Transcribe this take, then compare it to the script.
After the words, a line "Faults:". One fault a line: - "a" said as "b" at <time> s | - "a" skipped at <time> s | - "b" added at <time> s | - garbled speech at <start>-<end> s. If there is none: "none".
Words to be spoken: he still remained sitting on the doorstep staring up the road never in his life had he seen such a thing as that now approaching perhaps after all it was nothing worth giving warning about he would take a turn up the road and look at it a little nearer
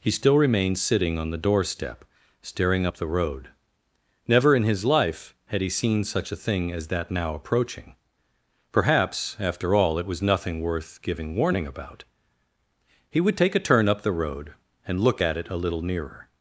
he still remained sitting on the doorstep staring up the road never in his life had he seen such a thing as that now approaching perhaps after all it was nothing worth giving warning about he would take a turn up the road and look at it a little nearer
Faults:
none